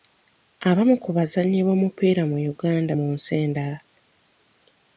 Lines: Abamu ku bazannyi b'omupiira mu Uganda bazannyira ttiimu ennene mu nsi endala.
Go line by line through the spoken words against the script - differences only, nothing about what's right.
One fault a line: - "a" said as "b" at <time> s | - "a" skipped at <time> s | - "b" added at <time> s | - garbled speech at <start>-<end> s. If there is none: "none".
- "bazannyira ttiimu ennene" skipped at 2.9 s